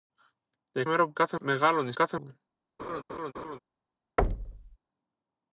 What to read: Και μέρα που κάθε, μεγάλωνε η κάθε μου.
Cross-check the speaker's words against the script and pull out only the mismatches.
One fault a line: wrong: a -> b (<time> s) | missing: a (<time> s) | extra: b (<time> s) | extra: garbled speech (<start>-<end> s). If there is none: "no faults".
no faults